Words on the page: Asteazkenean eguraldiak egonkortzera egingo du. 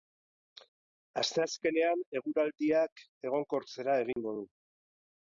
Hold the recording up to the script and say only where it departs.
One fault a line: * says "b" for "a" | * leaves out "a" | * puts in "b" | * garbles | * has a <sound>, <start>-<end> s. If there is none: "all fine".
* has a dropout, 4.1-4.2 s